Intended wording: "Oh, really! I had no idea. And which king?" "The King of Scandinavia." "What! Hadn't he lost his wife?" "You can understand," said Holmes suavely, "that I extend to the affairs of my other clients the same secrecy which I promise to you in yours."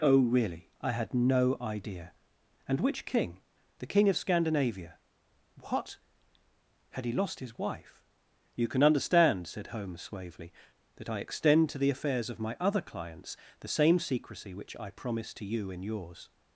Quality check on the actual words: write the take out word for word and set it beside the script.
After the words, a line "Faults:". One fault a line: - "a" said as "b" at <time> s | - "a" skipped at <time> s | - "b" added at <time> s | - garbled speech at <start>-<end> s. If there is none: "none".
"Oh, really! I had no idea. And which king?" "The King of Scandinavia." "What! Had he lost his wife?" "You can understand," said Holmes suavely, "that I extend to the affairs of my other clients the same secrecy which I promise to you in yours."
Faults:
- "Hadn't" said as "Had" at 6.9 s